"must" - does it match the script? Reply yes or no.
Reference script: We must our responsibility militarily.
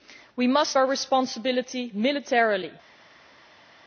yes